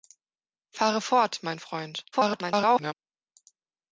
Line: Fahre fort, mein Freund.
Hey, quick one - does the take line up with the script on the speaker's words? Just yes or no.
no